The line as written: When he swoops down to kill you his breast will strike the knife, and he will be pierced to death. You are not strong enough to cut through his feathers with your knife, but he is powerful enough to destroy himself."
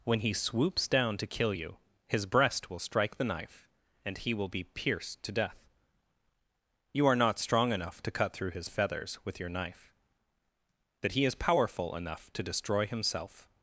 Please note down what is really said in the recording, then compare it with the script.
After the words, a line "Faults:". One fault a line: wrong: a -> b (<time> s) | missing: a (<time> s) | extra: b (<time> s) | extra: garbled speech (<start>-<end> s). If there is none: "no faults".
When he swoops down to kill you his breast will strike the knife, and he will be pierced to death. You are not strong enough to cut through his feathers with your knife, that he is powerful enough to destroy himself."
Faults:
wrong: but -> that (11.0 s)